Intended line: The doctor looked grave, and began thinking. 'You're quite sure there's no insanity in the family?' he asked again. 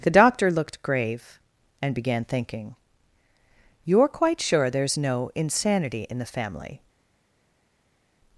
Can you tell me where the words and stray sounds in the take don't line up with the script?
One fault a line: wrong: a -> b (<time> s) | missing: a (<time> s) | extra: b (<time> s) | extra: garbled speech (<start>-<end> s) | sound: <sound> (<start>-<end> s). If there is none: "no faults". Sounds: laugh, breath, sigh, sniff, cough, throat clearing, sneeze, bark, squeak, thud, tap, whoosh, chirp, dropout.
missing: he asked again (6.8 s)